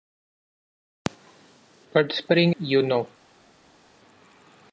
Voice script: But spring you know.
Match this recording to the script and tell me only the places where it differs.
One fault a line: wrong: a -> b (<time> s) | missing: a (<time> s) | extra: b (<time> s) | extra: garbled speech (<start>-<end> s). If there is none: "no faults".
no faults